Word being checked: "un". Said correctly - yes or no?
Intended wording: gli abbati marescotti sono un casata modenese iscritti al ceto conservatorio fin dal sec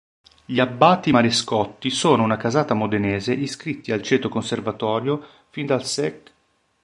no